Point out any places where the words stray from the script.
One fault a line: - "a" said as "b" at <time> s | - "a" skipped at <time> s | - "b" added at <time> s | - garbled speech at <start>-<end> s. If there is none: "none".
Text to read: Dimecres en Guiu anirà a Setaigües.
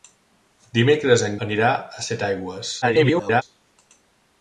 - "Guiu" skipped at 1.4 s
- garbled speech at 2.8-3.4 s